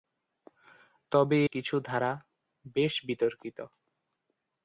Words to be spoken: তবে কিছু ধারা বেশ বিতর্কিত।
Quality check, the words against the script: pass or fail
pass